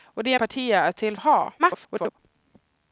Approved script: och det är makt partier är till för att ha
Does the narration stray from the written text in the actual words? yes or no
yes